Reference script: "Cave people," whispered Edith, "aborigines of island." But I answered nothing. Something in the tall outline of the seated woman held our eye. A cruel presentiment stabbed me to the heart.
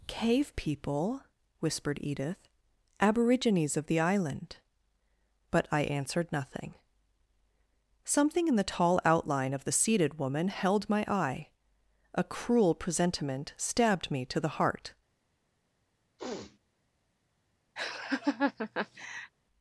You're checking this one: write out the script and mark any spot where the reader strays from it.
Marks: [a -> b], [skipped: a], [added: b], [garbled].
"Cave people," whispered Edith, "aborigines of [added: the] island." But I answered nothing. Something in the tall outline of the seated woman held [our -> my] eye. A cruel presentiment stabbed me to the heart.